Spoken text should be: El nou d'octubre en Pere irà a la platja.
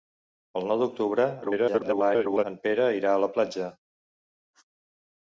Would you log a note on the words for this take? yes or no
yes